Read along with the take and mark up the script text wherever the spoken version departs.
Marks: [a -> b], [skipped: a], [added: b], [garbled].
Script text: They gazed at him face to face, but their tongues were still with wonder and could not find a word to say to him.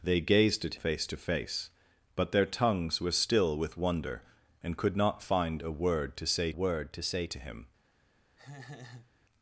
They gazed at [skipped: him] face to face, but their tongues were still with wonder and could not find a word to say [added: word to say] to him.